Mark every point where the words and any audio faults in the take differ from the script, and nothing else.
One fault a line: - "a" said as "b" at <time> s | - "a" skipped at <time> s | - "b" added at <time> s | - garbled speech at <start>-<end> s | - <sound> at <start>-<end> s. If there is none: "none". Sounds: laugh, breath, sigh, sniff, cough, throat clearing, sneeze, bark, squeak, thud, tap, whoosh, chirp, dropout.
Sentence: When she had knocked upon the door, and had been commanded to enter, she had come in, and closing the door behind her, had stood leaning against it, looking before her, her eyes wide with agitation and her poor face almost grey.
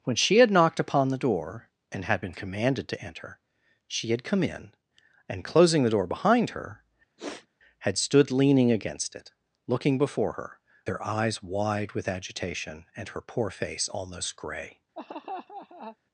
- sniff at 7.2-7.5 s
- laugh at 15.0-16.0 s